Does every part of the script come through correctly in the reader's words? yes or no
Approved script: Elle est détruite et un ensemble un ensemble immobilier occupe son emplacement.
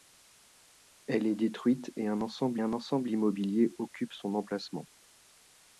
yes